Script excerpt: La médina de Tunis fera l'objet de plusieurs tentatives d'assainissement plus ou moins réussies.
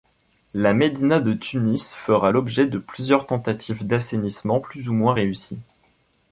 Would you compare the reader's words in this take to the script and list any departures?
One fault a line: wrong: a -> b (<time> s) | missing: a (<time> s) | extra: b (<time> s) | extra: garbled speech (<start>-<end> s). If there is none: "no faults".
no faults